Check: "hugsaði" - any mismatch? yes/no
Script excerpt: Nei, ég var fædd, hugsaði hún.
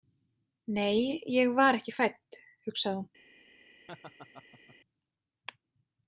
no